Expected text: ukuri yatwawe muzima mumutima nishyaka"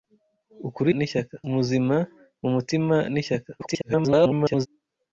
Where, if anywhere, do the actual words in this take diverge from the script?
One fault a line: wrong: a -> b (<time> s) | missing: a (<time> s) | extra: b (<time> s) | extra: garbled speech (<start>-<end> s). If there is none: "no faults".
wrong: yatwawe -> nishyaka (1.0 s)
extra: garbled speech (3.6-4.7 s)